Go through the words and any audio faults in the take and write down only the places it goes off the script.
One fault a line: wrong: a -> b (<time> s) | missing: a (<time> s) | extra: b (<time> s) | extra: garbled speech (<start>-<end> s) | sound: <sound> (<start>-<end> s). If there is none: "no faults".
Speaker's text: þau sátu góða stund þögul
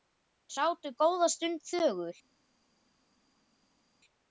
no faults